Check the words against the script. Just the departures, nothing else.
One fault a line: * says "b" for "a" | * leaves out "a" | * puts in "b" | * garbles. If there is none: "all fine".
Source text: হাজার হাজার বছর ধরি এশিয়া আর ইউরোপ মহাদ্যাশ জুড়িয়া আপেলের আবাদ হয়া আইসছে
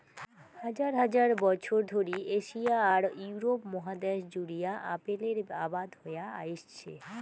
all fine